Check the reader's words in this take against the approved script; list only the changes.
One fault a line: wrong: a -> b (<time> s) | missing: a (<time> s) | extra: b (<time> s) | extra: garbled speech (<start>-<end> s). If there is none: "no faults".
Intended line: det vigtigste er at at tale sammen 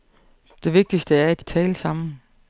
no faults